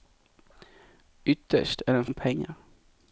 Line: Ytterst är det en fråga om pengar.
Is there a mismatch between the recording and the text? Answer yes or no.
yes